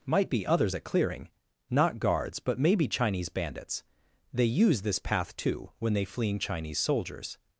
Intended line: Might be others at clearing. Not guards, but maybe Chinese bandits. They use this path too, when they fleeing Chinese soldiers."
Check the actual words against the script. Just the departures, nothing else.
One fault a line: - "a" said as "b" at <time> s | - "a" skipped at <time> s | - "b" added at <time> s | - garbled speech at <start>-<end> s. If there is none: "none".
none